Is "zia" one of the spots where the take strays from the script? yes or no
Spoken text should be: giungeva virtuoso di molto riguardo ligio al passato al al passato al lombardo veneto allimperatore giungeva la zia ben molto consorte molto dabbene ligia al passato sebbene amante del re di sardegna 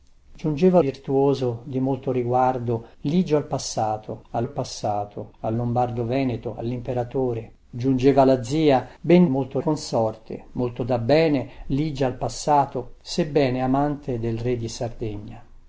no